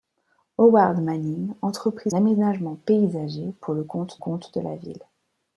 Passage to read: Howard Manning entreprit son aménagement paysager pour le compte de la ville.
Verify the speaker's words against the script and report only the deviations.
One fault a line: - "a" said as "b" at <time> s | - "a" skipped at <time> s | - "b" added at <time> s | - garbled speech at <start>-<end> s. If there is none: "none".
- "son" skipped at 2.1 s
- "compte" added at 4.2 s